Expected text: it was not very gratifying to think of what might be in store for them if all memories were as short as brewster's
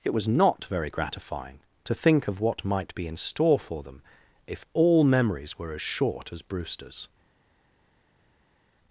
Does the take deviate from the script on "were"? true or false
false